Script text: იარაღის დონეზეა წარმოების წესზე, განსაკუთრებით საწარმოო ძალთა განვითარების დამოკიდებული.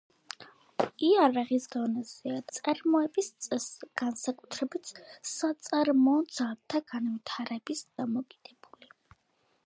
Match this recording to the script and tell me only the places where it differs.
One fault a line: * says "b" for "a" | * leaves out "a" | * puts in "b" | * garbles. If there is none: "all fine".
all fine